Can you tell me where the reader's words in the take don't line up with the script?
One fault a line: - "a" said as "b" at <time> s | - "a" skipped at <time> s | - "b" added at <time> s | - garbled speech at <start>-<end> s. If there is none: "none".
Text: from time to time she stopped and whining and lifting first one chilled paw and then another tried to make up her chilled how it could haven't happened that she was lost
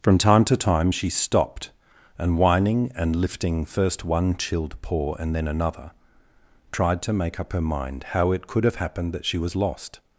- "chilled" said as "mind" at 7.6 s
- "haven't" said as "have" at 8.6 s